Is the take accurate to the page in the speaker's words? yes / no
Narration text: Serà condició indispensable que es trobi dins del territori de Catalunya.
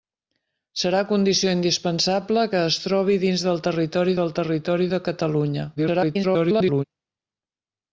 no